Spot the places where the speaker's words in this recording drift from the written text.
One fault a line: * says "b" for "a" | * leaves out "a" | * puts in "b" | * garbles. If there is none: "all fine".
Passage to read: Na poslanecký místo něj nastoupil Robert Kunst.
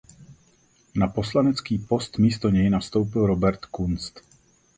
* puts in "post"